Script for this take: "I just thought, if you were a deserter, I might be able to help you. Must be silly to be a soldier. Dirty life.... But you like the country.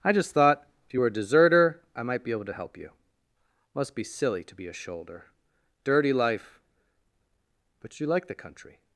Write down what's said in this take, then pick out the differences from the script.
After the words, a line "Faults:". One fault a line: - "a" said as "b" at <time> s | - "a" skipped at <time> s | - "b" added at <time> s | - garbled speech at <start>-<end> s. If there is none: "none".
"I just thought, if you were a deserter, I might be able to help you. Must be silly to be a shoulder. Dirty life.... But you like the country.
Faults:
- "soldier" said as "shoulder" at 4.7 s